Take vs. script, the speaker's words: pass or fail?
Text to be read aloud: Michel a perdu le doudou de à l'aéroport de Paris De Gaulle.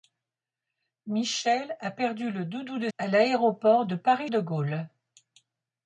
pass